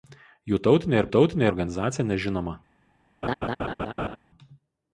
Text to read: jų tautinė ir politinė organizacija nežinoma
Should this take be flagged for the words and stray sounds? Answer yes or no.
yes